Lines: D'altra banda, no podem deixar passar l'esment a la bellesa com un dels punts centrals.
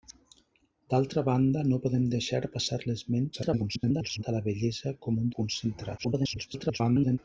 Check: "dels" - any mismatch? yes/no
yes